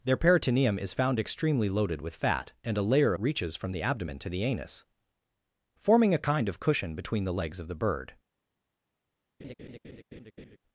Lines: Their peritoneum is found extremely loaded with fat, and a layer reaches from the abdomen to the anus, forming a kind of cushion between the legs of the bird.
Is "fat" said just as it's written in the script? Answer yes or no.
yes